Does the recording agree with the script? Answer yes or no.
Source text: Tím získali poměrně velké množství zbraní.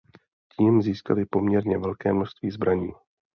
yes